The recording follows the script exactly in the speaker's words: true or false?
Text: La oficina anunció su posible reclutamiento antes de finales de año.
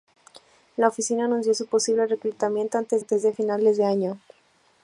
false